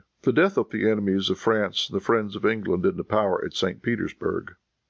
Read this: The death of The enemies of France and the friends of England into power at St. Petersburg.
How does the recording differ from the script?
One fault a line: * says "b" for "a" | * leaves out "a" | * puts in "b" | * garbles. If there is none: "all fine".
all fine